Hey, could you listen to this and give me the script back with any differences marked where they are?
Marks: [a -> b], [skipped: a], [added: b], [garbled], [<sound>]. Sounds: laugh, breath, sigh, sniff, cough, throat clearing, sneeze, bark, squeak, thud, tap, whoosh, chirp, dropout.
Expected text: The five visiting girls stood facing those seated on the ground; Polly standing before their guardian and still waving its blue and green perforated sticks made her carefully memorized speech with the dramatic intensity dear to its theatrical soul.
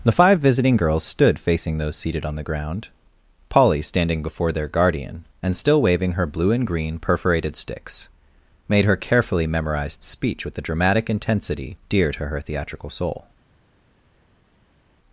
The five visiting girls stood facing those seated on the ground; Polly standing before their guardian and still waving [its -> her] blue and green perforated sticks made her carefully memorized speech with the dramatic intensity dear to [its -> her] theatrical soul.